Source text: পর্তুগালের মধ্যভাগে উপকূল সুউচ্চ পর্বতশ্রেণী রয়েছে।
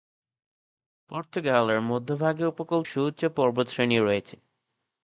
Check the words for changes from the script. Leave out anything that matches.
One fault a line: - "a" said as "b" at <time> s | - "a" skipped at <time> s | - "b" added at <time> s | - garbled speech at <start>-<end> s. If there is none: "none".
none